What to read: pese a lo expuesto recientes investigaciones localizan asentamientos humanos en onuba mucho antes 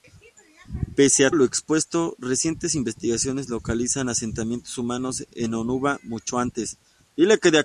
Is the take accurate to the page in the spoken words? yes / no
yes